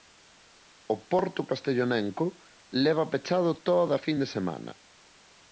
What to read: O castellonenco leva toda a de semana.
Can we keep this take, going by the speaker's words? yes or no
no